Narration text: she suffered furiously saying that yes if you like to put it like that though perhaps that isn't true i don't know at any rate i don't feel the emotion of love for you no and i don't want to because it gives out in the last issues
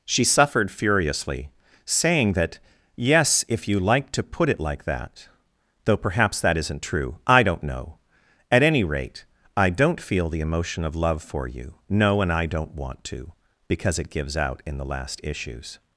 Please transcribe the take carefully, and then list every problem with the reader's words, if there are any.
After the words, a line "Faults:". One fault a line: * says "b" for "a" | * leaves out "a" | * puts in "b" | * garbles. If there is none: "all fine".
she suffered furiously saying that yes if you like to put it like that though perhaps that isn't true i don't know at any rate i don't feel the emotion of love for you no and i don't want to because it gives out in the last issues
Faults:
all fine